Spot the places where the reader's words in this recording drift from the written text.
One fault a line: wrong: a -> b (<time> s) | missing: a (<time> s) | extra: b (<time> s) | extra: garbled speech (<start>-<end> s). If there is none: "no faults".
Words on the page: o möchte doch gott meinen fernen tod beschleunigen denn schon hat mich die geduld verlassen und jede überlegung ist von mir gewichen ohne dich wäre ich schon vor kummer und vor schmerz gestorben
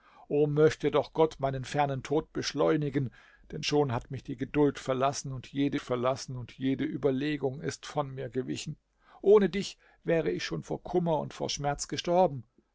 extra: verlassen und jede (5.8 s)